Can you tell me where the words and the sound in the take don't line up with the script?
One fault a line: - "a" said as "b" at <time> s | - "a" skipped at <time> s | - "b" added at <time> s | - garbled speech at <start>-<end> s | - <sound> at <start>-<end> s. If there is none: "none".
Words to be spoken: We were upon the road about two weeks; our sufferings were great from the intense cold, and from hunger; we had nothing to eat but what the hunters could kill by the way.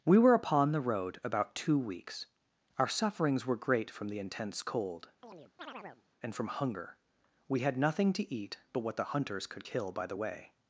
- chirp at 5.2-6.0 s